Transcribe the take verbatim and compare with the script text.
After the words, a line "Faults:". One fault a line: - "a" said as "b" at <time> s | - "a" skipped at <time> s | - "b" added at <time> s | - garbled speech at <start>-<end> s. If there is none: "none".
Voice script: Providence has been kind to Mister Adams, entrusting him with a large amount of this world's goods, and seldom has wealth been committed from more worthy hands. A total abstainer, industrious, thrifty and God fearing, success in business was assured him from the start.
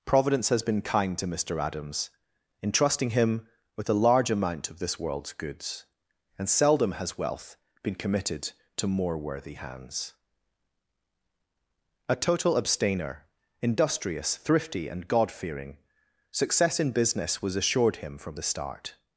Providence has been kind to Mister Adams, entrusting him with a large amount of this world's goods, and seldom has wealth been committed to more worthy hands. A total abstainer, industrious, thrifty and God fearing, success in business was assured him from the start.
Faults:
- "from" said as "to" at 8.8 s